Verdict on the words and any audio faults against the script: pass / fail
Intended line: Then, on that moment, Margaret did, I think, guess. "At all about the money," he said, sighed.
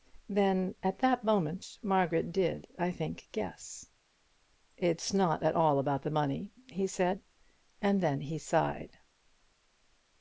fail